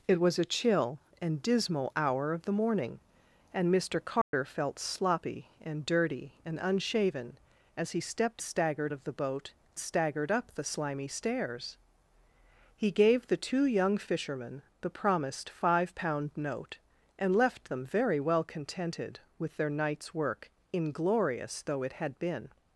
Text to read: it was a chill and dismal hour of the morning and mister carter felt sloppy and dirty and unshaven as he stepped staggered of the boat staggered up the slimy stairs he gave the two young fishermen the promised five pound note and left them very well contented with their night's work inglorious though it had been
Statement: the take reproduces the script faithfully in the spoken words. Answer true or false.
true